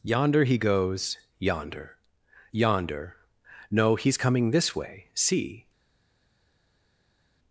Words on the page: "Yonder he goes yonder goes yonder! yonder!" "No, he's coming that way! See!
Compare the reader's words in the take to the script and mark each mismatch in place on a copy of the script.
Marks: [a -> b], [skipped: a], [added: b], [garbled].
"Yonder he goes yonder [skipped: goes] yonder! [skipped: yonder!"] "No, he's coming [that -> this] way! See!